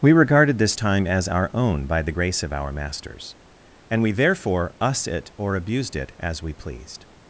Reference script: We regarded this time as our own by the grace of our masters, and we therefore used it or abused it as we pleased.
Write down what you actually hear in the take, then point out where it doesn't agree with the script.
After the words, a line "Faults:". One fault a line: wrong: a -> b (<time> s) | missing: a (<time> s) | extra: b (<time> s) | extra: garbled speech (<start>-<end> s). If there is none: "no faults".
We regarded this time as our own by the grace of our masters, and we therefore us it or abused it as we pleased.
Faults:
wrong: used -> us (4.8 s)